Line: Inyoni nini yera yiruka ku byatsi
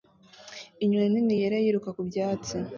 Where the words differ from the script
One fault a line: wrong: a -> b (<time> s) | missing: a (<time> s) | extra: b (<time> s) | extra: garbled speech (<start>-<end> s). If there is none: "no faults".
no faults